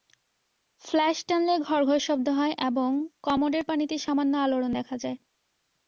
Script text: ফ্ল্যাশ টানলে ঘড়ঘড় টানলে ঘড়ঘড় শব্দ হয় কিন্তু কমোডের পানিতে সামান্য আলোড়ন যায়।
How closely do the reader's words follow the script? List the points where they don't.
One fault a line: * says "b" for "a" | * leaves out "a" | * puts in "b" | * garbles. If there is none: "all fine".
* leaves out "টানলে ঘড়ঘড়"
* says "এবং" for "কিন্তু"
* puts in "দেখা"